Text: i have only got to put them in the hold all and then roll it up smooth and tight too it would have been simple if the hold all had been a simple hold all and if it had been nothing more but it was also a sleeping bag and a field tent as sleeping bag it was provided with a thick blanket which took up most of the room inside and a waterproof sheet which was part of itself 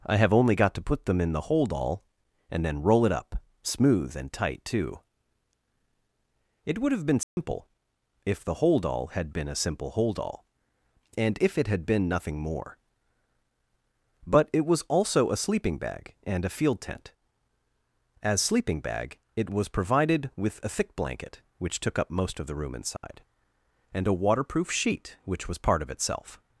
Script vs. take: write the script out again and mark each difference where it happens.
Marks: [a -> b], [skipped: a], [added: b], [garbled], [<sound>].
i have only got to put them in the hold all and then roll it up smooth and tight too it would have been simple [dropout] if the hold all had been a simple hold all and if it had been nothing more but it was also a sleeping bag and a field tent as sleeping bag it was provided with a thick blanket which took up most of the room inside [dropout] and a waterproof sheet which was part of itself